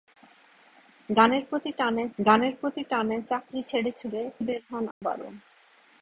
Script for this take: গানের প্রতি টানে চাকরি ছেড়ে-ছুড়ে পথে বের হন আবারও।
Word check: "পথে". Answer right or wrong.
wrong